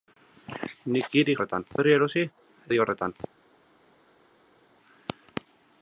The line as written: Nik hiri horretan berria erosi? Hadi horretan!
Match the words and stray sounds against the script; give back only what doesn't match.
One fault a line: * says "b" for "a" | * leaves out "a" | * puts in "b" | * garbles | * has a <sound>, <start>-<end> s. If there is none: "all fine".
all fine